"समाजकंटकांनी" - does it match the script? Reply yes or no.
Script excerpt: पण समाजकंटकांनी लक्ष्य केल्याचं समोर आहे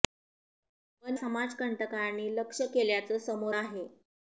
yes